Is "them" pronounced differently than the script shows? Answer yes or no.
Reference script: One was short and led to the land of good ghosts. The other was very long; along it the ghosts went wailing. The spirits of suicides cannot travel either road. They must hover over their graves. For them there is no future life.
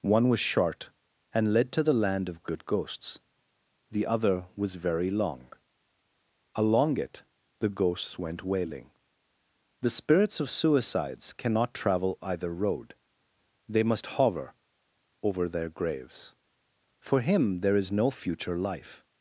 yes